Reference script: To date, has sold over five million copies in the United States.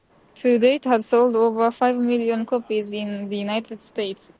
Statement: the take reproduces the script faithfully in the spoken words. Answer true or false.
true